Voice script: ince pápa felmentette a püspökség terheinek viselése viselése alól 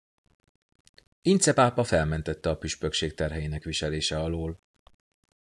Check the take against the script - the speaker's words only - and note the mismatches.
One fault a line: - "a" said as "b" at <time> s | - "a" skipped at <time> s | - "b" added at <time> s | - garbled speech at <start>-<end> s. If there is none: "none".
- "viselése" skipped at 4.2 s